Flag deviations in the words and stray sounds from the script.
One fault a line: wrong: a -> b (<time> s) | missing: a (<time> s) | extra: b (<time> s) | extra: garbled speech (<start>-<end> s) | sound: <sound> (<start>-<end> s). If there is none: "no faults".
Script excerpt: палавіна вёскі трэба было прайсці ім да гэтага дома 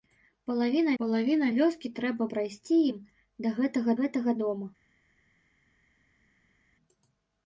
extra: палавіна (1.0 s)
missing: было (2.3 s)
extra: гэтага (4.0 s)